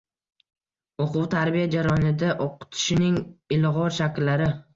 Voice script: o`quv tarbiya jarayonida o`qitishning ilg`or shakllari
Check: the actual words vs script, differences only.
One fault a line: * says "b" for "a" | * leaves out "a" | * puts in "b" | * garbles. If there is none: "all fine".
all fine